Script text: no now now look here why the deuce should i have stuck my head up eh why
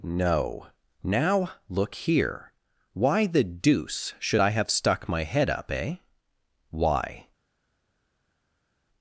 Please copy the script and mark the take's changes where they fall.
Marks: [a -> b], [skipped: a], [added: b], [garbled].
no now [skipped: now] look here why the deuce should i have stuck my head up eh why